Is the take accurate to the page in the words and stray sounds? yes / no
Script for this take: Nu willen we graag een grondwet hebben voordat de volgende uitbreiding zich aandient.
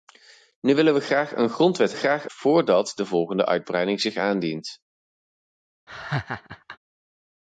no